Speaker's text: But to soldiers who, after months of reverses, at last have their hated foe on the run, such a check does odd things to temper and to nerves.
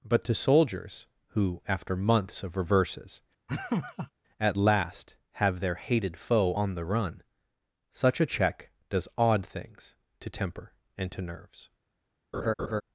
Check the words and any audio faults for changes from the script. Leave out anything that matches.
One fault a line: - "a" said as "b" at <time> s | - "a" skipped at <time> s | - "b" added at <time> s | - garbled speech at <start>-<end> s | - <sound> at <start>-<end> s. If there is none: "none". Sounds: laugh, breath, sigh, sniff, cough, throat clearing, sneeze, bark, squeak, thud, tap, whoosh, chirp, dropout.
- laugh at 3.5-4.1 s
- laugh at 12.3-12.8 s